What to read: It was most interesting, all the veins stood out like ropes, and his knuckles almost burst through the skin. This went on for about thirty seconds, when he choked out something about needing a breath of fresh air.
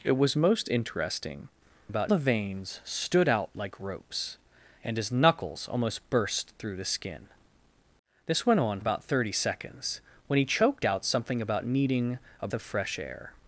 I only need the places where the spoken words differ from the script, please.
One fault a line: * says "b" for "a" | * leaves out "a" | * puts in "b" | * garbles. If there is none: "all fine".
* says "about" for "all"
* leaves out "for"
* leaves out "breath"